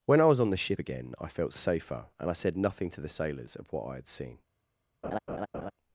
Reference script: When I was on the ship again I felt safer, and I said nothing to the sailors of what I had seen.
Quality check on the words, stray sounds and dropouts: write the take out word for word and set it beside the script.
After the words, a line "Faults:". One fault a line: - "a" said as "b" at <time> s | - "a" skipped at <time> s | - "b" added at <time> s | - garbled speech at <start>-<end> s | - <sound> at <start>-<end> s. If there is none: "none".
When I was on the ship again I felt safer, and I said nothing to the sailors of what I had seen.
Faults:
- laugh at 5.0-5.7 s